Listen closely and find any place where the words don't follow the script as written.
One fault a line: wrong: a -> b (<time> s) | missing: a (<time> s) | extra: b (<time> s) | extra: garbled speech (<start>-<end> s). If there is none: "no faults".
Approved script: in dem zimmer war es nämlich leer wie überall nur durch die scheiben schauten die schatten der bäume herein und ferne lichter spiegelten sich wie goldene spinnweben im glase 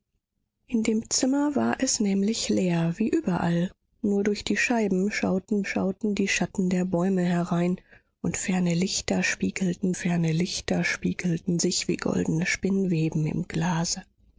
extra: schauten (5.6 s)
extra: ferne lichter spiegelten (9.9 s)